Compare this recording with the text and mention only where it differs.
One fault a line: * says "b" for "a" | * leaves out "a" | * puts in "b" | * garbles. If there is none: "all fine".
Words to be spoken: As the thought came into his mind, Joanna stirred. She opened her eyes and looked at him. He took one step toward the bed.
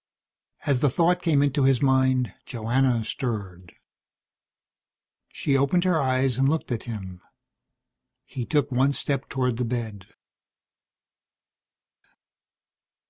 all fine